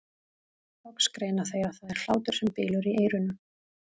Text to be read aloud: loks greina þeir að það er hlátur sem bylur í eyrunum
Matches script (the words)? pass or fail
pass